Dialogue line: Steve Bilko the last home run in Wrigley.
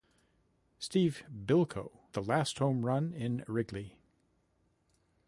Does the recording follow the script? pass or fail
pass